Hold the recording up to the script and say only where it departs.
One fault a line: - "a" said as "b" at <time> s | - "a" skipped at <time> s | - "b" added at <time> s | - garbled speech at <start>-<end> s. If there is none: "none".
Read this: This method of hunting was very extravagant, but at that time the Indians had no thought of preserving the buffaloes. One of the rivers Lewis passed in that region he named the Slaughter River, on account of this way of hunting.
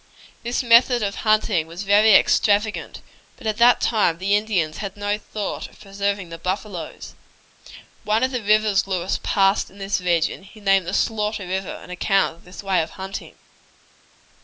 - "that" said as "this" at 9.8 s